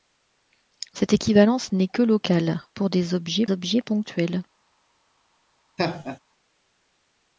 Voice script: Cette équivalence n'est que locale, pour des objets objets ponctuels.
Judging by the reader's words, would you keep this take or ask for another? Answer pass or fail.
pass